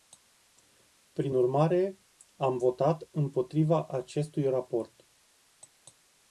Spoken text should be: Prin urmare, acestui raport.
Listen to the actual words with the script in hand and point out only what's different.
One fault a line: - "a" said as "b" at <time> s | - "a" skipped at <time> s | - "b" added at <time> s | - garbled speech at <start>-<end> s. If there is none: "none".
- "am votat împotriva" added at 2.4 s